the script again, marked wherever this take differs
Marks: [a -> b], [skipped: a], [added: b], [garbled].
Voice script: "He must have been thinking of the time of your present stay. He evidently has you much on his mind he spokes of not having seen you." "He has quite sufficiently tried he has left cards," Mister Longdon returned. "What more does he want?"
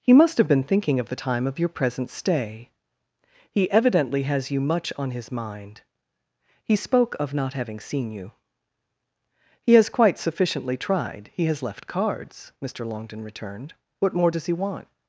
"He must have been thinking of the time of your present stay. He evidently has you much on his mind he [spokes -> spoke] of not having seen you." "He has quite sufficiently tried he has left cards," Mister Longdon returned. "What more does he want?"